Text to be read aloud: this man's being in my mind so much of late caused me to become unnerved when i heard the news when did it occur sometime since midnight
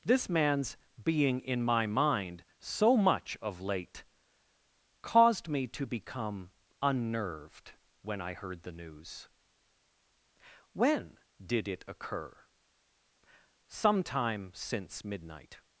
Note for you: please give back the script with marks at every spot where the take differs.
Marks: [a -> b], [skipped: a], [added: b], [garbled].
this man's being in my mind so much of late caused me to become unnerved when i heard the news when did it occur sometime since midnight